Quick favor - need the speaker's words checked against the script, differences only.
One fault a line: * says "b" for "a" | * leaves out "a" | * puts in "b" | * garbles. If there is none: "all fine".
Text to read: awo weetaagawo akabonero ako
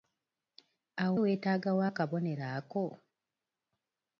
all fine